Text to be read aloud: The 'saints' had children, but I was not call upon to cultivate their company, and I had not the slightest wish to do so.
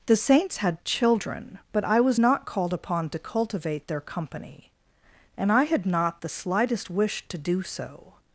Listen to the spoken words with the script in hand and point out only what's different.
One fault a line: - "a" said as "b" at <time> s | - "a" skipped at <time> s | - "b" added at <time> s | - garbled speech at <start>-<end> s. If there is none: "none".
- "call" said as "called" at 2.4 s